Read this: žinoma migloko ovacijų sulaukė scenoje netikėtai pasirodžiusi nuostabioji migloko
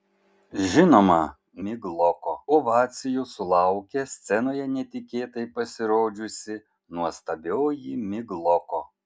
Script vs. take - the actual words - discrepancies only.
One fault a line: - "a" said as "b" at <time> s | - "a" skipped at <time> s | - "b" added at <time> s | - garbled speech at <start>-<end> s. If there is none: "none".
none